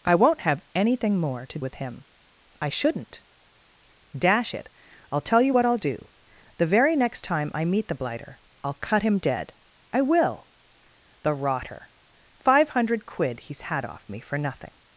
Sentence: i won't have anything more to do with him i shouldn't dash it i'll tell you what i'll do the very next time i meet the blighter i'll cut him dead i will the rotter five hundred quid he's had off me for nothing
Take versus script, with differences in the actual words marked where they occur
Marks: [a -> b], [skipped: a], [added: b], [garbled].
i won't have anything more to [skipped: do] with him i shouldn't dash it i'll tell you what i'll do the very next time i meet the blighter i'll cut him dead i will the rotter five hundred quid he's had off me for nothing